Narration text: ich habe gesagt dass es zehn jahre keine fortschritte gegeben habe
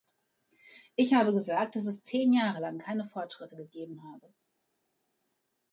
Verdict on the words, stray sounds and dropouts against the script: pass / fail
fail